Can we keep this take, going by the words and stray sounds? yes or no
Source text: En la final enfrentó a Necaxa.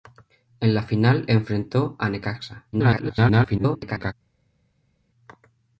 no